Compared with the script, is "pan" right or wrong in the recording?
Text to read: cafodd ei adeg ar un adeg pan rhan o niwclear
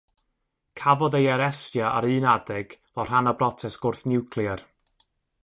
wrong